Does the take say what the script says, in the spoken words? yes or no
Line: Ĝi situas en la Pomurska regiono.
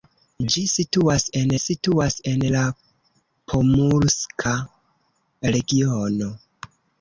no